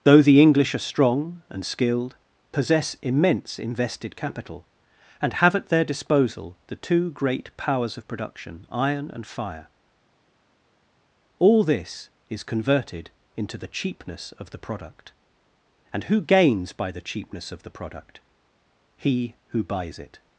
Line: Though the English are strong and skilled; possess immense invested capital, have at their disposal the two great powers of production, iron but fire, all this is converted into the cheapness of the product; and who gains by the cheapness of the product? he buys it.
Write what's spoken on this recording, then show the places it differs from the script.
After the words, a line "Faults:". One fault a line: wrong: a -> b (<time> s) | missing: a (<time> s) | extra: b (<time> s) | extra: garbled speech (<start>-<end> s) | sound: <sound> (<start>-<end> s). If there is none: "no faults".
Though the English are strong and skilled; possess immense invested capital, and have at their disposal the two great powers of production, iron and fire, all this is converted into the cheapness of the product; and who gains by the cheapness of the product? he who buys it.
Faults:
extra: and (5.2 s)
wrong: but -> and (9.1 s)
extra: who (19.5 s)